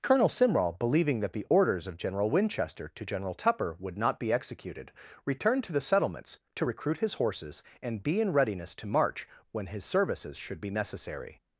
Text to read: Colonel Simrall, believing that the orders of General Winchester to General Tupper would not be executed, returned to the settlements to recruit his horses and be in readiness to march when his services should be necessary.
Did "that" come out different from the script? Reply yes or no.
no